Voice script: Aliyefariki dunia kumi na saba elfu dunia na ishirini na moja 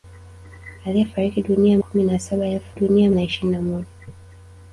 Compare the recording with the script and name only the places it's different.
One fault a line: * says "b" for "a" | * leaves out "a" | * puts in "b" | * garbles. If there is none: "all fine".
all fine